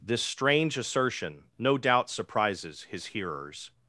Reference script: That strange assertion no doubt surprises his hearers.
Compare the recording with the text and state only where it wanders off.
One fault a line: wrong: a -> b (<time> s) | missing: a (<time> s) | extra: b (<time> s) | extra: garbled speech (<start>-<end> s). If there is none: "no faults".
wrong: That -> This (0.0 s)